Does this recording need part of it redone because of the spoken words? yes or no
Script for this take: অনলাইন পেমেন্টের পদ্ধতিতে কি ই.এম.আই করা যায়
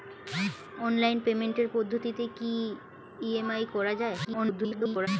yes